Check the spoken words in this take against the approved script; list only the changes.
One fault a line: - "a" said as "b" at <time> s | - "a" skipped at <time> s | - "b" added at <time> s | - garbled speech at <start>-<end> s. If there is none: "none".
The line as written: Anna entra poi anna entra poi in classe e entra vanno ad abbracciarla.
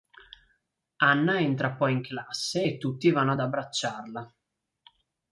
- "anna entra poi" skipped at 1.9 s
- "entra" said as "tutti" at 2.8 s